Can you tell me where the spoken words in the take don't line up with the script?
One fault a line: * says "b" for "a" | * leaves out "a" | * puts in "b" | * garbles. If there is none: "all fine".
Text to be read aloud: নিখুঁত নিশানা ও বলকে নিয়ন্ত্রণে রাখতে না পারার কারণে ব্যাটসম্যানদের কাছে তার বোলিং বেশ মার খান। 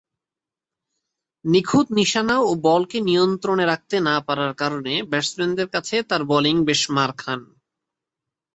all fine